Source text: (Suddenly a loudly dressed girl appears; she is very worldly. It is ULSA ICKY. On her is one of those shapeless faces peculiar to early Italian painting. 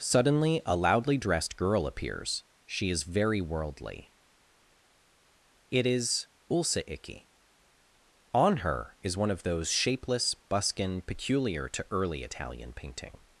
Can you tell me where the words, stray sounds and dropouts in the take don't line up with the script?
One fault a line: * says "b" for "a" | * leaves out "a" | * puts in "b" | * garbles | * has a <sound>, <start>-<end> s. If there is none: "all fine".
* says "buskin" for "faces"